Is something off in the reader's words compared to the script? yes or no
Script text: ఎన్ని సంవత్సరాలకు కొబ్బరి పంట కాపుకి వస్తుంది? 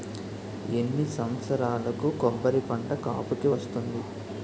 no